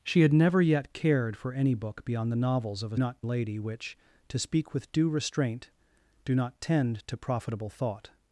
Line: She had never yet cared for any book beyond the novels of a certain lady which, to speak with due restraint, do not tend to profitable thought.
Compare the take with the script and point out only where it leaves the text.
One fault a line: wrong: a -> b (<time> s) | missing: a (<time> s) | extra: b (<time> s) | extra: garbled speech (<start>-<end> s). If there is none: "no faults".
wrong: certain -> not (3.0 s)